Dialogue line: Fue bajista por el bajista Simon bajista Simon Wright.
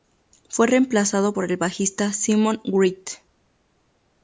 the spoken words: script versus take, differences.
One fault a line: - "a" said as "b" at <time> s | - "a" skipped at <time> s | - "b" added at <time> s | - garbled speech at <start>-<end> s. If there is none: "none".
- "bajista" said as "reemplazado" at 0.7 s
- "bajista Simon" skipped at 2.6 s